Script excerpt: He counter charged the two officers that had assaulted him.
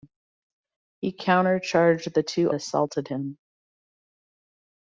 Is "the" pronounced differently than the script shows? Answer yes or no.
no